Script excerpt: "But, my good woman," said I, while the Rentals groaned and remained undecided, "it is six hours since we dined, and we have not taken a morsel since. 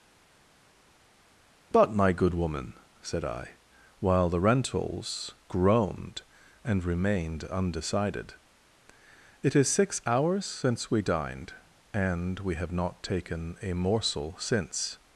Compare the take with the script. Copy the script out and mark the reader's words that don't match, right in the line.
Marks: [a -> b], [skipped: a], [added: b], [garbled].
"But, my good woman," said I, while the Rentals groaned and remained undecided, "it is six hours since we dined, and we have not taken a morsel since.